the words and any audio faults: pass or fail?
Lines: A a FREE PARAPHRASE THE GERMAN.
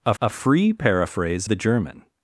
pass